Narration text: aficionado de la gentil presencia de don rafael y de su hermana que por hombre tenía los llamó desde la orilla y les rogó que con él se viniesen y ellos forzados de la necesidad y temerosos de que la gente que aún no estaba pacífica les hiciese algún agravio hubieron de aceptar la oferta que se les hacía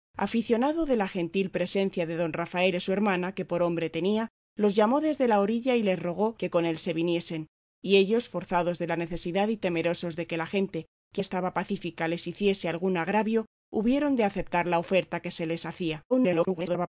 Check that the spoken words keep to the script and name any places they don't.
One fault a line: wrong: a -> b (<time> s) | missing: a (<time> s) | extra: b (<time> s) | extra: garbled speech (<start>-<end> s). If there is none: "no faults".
missing: y (2.8 s)
missing: aún no (11.2 s)
extra: garbled speech (16.1-16.9 s)